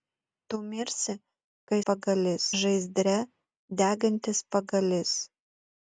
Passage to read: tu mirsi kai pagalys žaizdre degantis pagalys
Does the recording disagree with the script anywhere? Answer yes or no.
no